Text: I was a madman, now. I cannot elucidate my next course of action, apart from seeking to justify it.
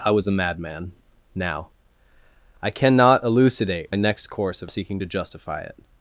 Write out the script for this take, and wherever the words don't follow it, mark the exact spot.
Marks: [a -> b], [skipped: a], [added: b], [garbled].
I was a madman, now. I cannot elucidate [skipped: my] next course of [skipped: action, apart from] seeking to justify it.